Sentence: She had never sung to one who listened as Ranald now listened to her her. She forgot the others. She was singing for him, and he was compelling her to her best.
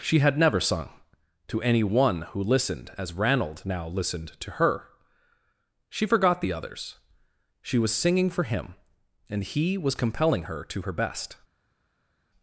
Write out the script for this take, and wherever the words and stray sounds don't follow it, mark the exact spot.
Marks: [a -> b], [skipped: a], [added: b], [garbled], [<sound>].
She had never sung to [added: any] one who listened as Ranald now listened to her [skipped: her.] She forgot the others. She was singing for him, and he was compelling her to her best.